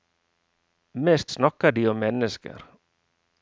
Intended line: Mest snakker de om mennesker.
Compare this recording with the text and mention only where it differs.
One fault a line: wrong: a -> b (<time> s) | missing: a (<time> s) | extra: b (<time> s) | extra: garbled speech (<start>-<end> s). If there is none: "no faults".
no faults